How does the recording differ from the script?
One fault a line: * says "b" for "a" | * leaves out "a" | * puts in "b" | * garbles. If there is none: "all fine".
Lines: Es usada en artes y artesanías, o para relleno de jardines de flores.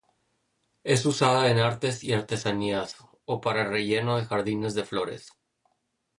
all fine